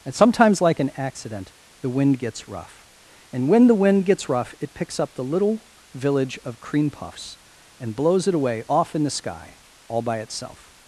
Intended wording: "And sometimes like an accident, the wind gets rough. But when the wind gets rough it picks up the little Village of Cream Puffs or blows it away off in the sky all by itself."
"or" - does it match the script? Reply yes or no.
no